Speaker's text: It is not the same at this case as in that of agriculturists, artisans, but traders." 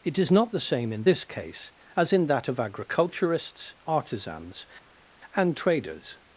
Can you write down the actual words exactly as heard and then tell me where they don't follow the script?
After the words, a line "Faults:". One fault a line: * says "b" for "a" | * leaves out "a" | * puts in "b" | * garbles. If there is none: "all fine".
It is not the same in this case as in that of agriculturists, artisans, and traders."
Faults:
* says "in" for "at"
* says "and" for "but"